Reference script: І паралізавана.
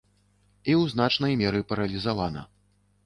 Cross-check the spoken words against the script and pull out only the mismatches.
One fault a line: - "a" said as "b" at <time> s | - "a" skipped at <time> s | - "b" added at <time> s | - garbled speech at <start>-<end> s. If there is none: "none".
- "ў значнай меры" added at 0.8 s